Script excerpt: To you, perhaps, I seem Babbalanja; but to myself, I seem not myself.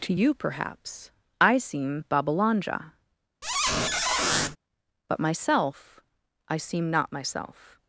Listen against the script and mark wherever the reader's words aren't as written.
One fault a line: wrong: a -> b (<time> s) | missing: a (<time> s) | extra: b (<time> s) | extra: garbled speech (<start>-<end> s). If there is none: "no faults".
missing: to (5.2 s)